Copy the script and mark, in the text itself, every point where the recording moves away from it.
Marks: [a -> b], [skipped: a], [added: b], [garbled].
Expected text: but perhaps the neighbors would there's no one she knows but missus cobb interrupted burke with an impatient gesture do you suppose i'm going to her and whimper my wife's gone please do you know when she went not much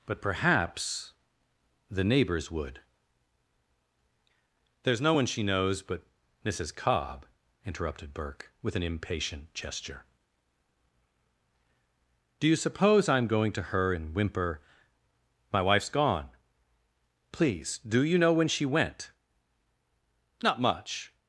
but perhaps the neighbors would there's no one she knows but missus cobb interrupted burke with an impatient gesture do you suppose i'm going to her and whimper my wife's gone please do you know when she went not much